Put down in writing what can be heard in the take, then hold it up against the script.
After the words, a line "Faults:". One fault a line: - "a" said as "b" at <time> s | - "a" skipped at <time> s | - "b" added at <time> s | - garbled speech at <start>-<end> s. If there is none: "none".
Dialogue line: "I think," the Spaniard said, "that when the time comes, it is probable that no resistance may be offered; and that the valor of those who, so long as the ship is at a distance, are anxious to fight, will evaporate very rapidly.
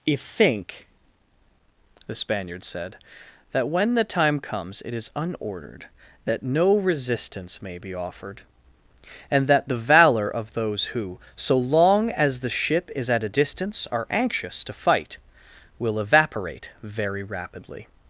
"I think," the Spaniard said, "that when the time comes, it is unordered that no resistance may be offered; and that the valor of those who, so long as the ship is at a distance, are anxious to fight, will evaporate very rapidly.
Faults:
- "probable" said as "unordered" at 5.1 s